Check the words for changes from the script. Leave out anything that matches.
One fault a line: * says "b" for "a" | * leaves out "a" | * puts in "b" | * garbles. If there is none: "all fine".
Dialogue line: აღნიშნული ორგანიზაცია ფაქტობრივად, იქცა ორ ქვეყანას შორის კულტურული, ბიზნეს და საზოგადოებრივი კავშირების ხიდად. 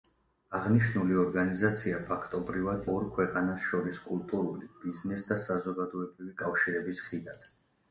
* leaves out "იქცა"